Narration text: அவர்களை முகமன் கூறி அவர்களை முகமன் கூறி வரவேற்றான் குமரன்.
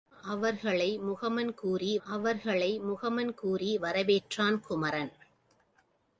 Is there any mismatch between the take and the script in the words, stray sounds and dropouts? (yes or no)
no